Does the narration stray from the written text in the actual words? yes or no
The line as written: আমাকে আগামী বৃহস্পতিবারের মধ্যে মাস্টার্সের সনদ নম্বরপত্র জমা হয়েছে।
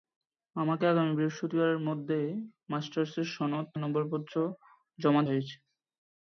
no